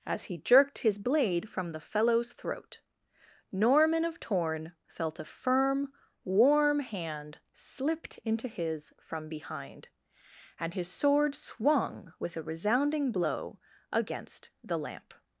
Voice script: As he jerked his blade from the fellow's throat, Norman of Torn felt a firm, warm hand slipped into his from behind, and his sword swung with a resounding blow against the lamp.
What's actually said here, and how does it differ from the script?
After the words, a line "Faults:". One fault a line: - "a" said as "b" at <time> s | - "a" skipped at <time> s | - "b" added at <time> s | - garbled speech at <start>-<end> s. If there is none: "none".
As he jerked his blade from the fellow's throat, Norman of Torn felt a firm, warm hand slipped into his from behind, and his sword swung with a resounding blow against the lamp.
Faults:
none